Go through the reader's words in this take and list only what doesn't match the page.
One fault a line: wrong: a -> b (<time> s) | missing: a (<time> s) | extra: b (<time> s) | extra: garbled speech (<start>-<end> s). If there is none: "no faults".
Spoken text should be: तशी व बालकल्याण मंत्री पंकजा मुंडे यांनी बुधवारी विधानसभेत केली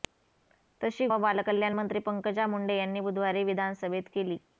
no faults